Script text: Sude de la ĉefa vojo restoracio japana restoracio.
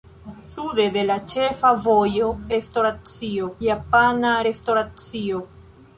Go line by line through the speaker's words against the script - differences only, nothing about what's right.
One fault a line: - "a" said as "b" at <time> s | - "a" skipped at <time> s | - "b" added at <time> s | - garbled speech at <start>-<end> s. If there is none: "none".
none